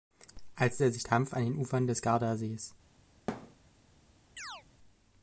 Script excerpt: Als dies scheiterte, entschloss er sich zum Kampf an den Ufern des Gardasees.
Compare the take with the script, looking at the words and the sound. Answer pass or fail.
fail